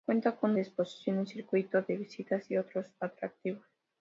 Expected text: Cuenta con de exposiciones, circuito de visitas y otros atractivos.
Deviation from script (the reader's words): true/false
false